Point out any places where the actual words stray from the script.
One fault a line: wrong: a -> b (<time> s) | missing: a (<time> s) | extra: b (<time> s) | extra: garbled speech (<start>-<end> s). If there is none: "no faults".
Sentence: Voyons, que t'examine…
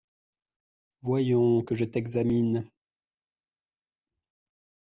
extra: je (1.7 s)